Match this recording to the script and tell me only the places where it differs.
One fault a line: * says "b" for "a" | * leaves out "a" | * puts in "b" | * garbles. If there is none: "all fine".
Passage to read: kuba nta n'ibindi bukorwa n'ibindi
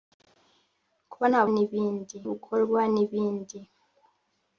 all fine